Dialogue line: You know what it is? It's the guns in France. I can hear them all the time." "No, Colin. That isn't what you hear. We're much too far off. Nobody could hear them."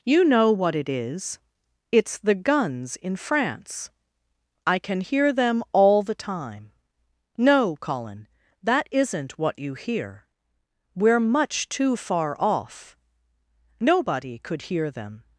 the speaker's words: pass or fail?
pass